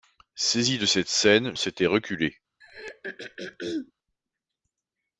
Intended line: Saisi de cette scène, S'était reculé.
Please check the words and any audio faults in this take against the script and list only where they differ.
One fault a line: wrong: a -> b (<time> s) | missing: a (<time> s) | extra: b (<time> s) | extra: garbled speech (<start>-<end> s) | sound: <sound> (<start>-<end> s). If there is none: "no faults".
sound: throat clearing (2.6-3.9 s)